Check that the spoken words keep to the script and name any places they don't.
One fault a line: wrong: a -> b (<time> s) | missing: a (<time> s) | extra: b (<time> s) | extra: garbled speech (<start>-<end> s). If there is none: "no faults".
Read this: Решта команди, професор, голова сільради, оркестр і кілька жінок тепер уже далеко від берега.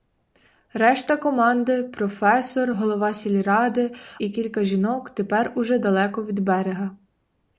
missing: оркестр (3.9 s)